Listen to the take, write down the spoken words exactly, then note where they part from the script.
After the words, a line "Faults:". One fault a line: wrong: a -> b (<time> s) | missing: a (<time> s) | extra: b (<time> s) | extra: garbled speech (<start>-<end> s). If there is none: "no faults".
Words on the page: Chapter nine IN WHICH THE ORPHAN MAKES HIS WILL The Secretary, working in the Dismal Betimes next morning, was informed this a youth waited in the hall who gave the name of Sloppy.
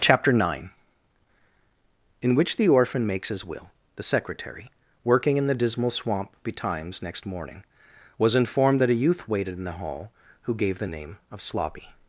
Chapter nine IN WHICH THE ORPHAN MAKES HIS WILL The Secretary, working in the Dismal Swamp betimes next morning, was informed that a youth waited in the hall who gave the name of Sloppy.
Faults:
extra: Swamp (5.9 s)
wrong: this -> that (8.8 s)